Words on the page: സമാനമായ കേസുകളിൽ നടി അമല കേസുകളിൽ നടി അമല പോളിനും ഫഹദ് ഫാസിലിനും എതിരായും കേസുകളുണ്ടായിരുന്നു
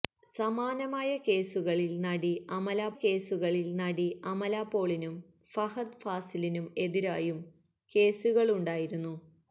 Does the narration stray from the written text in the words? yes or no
no